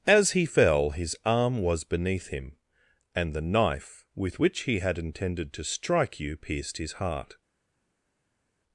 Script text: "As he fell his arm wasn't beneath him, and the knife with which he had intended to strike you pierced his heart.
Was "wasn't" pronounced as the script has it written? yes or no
no